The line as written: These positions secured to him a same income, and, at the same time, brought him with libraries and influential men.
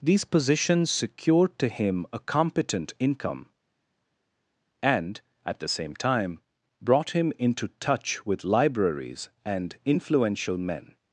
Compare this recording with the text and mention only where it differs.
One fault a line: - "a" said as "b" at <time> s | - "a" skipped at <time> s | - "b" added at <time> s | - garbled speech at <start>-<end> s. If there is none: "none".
- "same" said as "competent" at 2.2 s
- "into touch" added at 7.4 s